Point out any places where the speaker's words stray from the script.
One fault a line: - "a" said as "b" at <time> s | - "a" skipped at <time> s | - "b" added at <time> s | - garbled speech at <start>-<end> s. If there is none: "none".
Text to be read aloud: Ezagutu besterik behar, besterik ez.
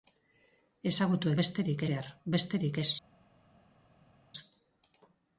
none